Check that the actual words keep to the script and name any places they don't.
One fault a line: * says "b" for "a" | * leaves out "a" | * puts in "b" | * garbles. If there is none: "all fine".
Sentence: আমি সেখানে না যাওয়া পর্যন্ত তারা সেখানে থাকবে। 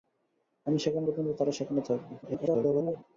* leaves out "না যাওয়া"
* garbles